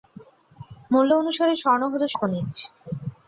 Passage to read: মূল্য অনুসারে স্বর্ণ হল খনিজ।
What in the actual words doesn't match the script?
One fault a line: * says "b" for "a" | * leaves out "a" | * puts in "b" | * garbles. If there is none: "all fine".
all fine